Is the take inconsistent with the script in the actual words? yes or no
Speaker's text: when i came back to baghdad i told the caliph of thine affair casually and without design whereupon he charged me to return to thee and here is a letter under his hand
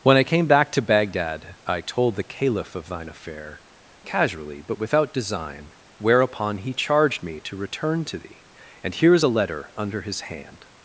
yes